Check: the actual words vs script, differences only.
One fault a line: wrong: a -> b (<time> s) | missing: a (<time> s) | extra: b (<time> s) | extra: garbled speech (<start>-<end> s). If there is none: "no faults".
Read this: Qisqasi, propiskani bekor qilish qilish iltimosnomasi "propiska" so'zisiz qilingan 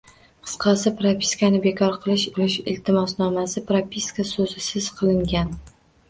no faults